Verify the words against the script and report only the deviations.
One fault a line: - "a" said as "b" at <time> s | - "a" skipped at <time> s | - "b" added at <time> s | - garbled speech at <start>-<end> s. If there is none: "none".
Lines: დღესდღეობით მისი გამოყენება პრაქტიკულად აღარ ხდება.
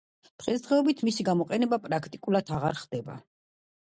none